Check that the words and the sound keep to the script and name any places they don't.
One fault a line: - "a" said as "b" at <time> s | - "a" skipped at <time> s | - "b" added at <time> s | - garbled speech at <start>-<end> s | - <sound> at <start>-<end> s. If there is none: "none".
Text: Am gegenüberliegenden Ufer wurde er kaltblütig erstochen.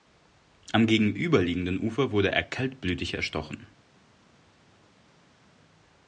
none